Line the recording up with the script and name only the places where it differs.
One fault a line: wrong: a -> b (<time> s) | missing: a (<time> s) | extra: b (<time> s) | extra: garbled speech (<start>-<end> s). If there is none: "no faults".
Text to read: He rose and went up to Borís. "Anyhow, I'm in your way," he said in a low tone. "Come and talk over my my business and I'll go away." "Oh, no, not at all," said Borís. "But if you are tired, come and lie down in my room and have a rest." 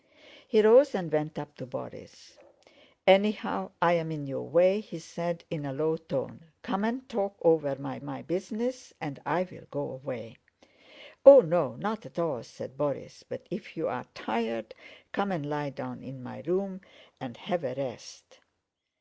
no faults